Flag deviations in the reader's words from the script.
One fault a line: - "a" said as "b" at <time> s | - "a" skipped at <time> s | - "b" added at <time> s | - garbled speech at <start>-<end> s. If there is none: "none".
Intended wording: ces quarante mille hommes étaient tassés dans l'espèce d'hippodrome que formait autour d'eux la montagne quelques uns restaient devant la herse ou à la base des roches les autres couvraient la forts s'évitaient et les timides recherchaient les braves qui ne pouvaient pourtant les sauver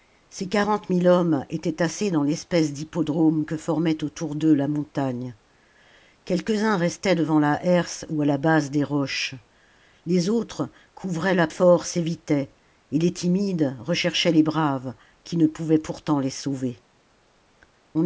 none